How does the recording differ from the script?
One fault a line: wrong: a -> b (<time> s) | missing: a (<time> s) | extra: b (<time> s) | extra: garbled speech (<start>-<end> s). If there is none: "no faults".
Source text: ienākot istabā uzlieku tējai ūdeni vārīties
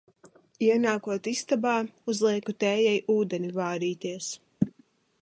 no faults